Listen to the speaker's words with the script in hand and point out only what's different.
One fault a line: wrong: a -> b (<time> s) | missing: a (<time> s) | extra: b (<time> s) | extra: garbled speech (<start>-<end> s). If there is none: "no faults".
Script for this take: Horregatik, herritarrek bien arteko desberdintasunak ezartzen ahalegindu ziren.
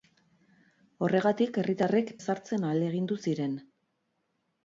missing: bien arteko desberdintasunak (2.1 s)